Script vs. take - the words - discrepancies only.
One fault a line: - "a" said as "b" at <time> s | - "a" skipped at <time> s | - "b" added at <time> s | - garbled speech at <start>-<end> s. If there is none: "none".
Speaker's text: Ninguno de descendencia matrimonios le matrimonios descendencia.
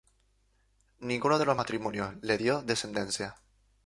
- "descendencia" said as "los" at 1.4 s
- "matrimonios" said as "dio" at 2.3 s